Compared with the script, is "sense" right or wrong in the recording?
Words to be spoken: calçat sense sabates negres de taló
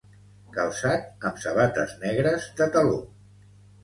wrong